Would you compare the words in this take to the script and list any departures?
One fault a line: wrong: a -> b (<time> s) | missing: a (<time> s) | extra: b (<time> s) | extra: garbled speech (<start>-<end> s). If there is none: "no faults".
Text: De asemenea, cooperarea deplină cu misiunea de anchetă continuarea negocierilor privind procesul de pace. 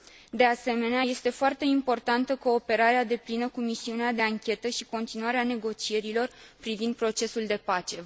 extra: este foarte importantă (1.0 s)
extra: și (4.7 s)